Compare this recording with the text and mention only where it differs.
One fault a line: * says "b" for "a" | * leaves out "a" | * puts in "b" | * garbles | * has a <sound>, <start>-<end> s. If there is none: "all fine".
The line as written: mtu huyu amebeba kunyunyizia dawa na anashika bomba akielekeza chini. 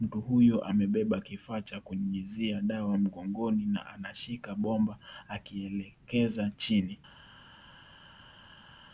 * puts in "kifaa cha"
* puts in "mgongoni"